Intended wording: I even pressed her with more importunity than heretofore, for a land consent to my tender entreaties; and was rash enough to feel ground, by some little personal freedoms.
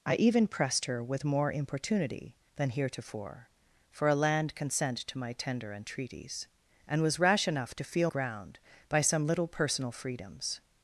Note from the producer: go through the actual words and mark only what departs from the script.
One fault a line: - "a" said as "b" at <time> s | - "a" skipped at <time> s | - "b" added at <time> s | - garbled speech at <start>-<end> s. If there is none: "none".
none